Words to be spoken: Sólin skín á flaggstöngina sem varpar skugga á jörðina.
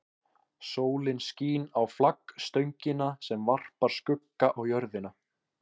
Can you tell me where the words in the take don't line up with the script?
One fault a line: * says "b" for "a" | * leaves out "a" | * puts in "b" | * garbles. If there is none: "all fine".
all fine